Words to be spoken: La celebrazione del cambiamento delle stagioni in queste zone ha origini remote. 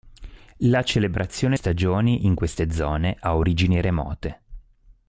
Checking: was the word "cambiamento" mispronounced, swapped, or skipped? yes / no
yes